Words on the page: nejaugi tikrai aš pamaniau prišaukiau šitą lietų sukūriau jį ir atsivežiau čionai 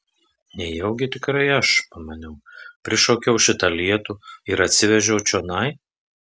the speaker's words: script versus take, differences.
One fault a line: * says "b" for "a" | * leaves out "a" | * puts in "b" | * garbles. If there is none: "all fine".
* leaves out "sukūriau jį"